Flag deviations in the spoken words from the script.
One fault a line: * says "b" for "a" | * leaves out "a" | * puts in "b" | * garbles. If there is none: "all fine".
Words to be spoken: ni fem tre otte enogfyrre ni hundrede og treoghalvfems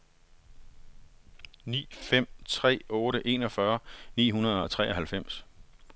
all fine